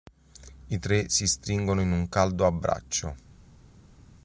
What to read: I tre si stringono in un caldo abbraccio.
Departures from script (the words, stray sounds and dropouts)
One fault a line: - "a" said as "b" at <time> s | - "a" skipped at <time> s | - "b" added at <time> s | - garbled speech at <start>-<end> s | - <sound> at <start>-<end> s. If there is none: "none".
none